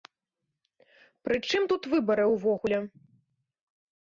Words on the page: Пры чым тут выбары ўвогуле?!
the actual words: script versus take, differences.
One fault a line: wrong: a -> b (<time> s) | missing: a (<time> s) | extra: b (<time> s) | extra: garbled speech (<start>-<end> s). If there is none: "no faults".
no faults